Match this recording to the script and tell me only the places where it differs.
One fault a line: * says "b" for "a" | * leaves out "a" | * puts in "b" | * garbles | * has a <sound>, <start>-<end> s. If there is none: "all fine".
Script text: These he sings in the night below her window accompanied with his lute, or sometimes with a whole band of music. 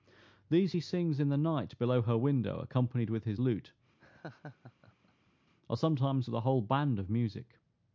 * has a laugh, 4.0-5.3 s